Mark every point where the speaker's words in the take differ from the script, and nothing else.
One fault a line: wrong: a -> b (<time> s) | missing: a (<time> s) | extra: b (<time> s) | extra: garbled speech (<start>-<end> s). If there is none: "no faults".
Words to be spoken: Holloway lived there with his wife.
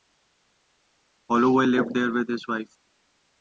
no faults